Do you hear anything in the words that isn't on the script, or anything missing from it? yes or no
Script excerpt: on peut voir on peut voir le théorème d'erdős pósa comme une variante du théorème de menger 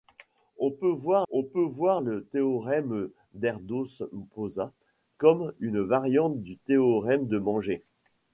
no